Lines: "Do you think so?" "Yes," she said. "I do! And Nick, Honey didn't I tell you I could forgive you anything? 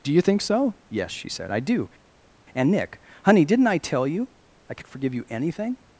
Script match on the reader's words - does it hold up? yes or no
yes